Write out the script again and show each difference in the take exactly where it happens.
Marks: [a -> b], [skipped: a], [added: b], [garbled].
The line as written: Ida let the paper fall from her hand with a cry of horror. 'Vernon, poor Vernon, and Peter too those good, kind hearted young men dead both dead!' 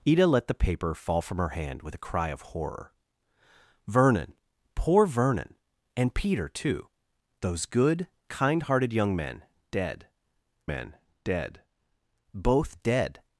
Ida let the paper fall from her hand with a cry of horror. 'Vernon, poor Vernon, and Peter too those good, kind hearted young men dead [added: men dead] both dead!'